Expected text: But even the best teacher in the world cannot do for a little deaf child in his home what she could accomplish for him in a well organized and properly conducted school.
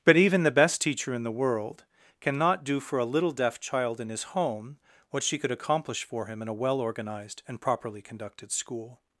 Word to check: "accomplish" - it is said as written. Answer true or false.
true